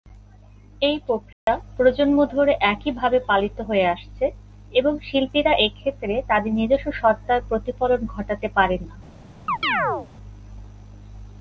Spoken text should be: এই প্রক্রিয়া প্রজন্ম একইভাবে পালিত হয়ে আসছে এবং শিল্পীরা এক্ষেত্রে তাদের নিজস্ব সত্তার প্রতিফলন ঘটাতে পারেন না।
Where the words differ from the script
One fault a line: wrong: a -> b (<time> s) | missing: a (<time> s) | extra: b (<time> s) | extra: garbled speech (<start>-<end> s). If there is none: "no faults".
extra: ধরে (2.2 s)